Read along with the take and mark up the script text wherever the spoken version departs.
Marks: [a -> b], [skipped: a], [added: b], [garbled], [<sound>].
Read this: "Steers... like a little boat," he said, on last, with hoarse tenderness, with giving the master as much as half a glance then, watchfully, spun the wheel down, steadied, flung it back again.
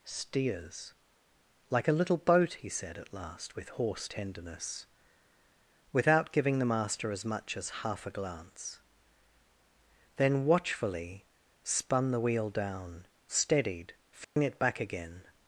"Steers... like a little boat," he said, [on -> at] last, with hoarse tenderness, [with -> without] giving the master as much as half a glance then, watchfully, spun the wheel down, steadied, flung [dropout] it back again.